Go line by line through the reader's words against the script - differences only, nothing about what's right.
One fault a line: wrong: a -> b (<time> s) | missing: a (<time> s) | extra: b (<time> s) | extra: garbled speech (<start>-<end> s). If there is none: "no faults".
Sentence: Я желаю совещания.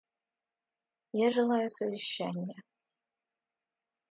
no faults